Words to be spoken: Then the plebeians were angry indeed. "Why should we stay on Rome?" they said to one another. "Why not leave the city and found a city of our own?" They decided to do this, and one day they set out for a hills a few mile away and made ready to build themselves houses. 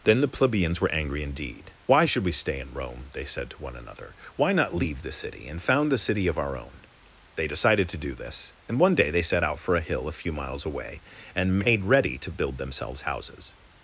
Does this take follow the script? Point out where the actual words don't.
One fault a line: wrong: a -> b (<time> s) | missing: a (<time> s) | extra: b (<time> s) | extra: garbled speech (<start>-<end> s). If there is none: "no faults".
wrong: on -> in (2.6 s)
wrong: hills -> hill (9.8 s)
wrong: mile -> miles (10.3 s)